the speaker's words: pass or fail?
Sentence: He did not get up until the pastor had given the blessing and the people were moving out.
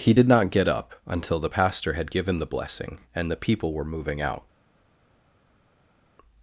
pass